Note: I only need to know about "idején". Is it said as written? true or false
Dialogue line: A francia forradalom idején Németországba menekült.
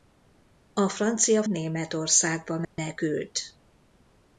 false